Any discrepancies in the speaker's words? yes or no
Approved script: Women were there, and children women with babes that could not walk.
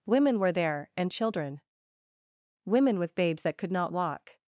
no